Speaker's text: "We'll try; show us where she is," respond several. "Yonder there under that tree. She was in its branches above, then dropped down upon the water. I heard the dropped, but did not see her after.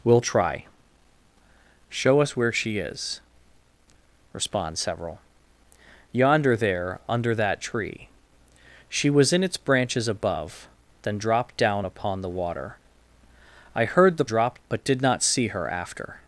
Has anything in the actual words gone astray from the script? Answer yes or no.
no